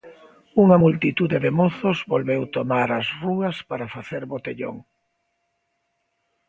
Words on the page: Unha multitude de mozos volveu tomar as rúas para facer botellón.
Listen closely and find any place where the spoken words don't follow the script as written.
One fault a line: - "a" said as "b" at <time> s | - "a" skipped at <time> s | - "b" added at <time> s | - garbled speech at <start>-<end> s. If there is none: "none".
none